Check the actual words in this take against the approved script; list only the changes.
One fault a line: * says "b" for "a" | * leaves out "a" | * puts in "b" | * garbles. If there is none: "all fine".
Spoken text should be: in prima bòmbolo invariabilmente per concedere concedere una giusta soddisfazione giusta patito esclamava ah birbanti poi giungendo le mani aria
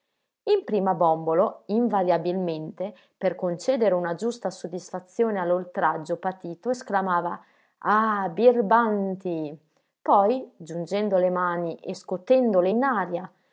* leaves out "concedere"
* says "all'oltraggio" for "giusta"
* puts in "e scotendole in"